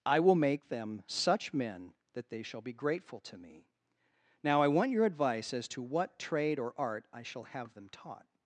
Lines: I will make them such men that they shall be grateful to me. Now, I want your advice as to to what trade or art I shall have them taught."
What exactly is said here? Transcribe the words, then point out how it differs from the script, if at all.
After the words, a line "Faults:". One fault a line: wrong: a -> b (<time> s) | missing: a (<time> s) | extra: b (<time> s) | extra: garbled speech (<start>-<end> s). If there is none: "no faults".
I will make them such men that they shall be grateful to me. Now, I want your advice as to what trade or art I shall have them taught."
Faults:
missing: to (5.8 s)